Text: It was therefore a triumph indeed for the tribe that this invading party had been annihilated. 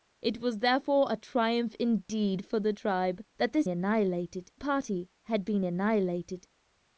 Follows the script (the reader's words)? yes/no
no